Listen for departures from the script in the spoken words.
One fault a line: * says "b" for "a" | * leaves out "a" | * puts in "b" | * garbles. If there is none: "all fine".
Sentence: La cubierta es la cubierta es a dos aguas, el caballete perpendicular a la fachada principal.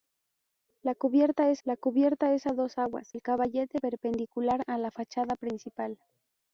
all fine